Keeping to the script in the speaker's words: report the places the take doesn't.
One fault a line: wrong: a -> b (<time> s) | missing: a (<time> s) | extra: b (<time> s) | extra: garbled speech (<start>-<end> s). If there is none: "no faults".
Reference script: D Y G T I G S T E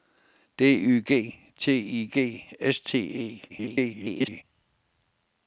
extra: garbled speech (3.5-4.4 s)